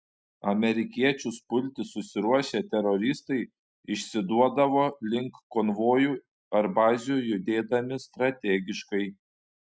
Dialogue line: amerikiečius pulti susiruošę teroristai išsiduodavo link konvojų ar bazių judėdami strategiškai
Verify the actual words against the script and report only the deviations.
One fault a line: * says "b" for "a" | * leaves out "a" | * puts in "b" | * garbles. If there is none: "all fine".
all fine